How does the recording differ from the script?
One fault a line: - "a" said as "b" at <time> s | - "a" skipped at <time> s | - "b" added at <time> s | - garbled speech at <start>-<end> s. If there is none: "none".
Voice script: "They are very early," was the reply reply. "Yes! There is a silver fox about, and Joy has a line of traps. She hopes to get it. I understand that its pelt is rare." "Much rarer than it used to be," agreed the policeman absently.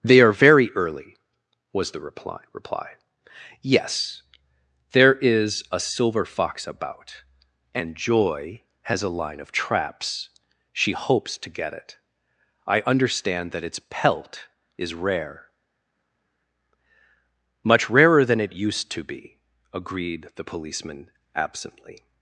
none